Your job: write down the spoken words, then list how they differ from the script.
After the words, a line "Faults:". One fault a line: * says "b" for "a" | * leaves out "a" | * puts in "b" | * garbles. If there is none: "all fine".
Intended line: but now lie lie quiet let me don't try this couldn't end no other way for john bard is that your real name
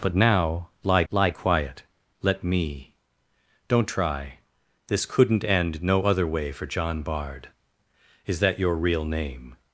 but now lie lie quiet let me don't try this couldn't end no other way for john bard is that your real name
Faults:
all fine